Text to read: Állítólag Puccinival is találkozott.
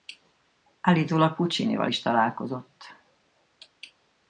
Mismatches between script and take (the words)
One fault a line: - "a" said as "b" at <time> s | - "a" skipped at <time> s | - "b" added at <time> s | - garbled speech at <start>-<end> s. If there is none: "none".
none